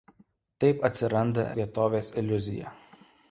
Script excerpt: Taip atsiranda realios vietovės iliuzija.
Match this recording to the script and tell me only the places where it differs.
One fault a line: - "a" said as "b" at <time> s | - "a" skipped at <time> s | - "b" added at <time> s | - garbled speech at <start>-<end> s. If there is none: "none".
- "realios" skipped at 1.5 s